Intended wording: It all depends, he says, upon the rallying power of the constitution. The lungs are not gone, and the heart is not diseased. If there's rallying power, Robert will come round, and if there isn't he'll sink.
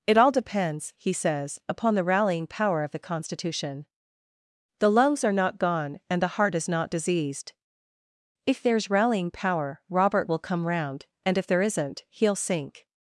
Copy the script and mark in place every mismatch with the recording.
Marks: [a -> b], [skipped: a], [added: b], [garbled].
It all depends, he says, upon the rallying power of the constitution. The lungs are not gone, and the heart is not diseased. If there's rallying power, Robert will come round, and if there isn't he'll sink.